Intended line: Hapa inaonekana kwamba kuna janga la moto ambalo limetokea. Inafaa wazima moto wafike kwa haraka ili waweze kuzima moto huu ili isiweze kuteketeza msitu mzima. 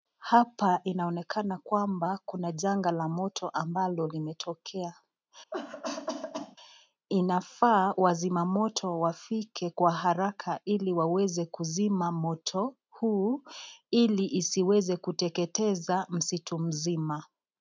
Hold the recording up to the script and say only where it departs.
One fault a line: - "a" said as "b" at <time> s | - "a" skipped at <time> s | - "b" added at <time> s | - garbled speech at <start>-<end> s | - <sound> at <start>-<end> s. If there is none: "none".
- cough at 5.5-6.6 s